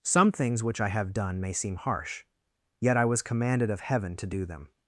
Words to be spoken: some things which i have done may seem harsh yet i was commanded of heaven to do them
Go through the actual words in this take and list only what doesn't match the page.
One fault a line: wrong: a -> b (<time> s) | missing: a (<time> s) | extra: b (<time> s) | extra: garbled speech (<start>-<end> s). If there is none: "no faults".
no faults